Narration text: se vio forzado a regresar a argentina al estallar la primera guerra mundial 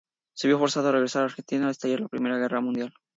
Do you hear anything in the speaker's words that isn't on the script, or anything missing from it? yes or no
no